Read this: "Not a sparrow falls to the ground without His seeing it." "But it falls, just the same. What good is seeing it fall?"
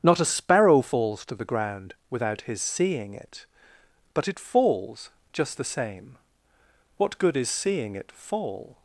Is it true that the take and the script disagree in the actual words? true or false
false